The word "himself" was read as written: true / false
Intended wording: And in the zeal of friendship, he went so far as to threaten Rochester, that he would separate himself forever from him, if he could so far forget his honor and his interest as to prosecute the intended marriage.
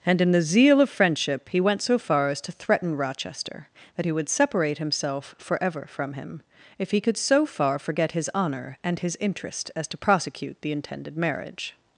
true